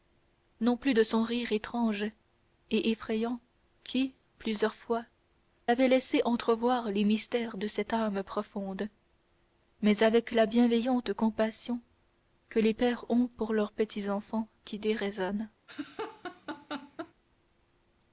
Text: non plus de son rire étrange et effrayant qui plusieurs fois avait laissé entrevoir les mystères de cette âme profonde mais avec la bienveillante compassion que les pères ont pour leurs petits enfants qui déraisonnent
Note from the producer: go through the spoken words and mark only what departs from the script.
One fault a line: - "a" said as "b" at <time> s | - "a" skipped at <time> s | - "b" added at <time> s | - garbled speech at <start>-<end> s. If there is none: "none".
none